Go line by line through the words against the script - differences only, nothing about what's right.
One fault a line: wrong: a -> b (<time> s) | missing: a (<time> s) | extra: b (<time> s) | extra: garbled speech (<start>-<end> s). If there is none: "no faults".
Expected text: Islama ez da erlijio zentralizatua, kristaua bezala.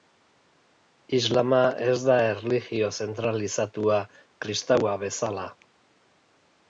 no faults